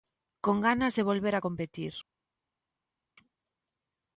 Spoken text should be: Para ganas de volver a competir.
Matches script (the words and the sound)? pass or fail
fail